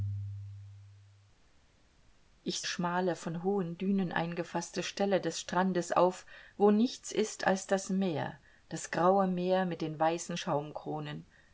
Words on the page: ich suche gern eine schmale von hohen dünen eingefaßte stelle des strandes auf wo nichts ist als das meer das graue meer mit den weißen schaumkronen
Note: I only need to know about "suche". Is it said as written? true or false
false